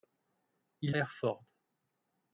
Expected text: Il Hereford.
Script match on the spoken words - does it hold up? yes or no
yes